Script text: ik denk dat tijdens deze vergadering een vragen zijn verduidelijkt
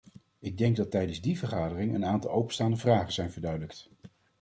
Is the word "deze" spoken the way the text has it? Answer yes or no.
no